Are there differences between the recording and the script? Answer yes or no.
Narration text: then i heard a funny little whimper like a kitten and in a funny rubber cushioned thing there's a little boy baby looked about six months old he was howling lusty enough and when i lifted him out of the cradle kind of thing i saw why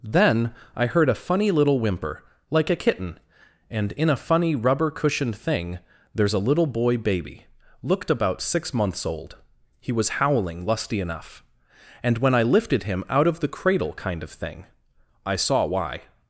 no